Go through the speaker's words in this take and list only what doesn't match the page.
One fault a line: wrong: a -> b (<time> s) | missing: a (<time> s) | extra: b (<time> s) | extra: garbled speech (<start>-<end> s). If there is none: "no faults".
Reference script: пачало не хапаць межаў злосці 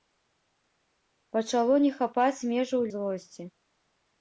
no faults